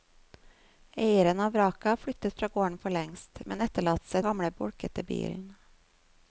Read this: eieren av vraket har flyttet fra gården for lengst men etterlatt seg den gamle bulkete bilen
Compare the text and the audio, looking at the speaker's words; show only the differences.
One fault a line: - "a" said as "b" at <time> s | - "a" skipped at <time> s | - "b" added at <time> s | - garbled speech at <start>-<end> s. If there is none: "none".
- "den" skipped at 4.2 s